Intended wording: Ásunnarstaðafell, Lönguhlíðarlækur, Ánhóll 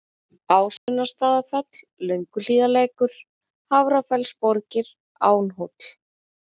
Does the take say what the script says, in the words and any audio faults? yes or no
no